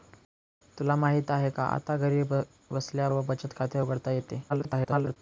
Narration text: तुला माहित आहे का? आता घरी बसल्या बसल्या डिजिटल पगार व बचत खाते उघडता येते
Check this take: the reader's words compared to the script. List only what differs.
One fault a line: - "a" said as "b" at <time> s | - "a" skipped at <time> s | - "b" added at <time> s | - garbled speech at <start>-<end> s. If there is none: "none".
- "बसल्या डिजिटल पगार" skipped at 3.1 s
- garbled speech at 4.5-5.2 s